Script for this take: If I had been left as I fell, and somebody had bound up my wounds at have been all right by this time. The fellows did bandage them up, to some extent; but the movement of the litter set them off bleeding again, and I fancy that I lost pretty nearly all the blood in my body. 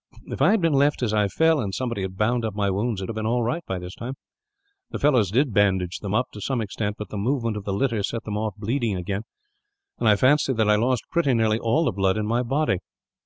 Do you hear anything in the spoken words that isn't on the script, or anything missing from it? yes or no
no